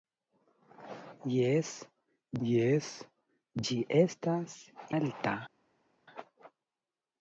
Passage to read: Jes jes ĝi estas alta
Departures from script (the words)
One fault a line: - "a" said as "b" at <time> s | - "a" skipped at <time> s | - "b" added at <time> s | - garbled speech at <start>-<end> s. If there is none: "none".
none